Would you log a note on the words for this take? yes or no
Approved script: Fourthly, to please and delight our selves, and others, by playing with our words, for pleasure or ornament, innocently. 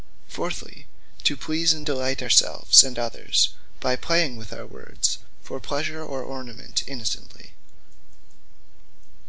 no